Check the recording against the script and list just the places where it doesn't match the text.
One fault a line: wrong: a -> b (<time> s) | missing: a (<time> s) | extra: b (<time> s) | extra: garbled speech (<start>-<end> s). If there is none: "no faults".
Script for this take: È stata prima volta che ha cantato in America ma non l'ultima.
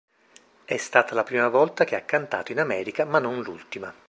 extra: la (1.1 s)